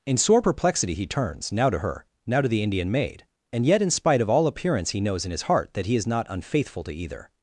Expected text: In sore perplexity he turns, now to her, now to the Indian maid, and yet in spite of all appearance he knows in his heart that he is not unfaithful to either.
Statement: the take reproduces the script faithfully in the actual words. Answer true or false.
true